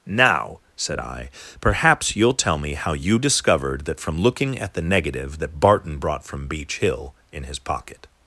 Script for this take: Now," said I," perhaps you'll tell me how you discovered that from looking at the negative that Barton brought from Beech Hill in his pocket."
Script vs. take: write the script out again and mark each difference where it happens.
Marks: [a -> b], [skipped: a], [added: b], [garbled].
Now," said I," perhaps you'll tell me how you discovered that from looking at the negative that Barton brought from Beech Hill in his pocket."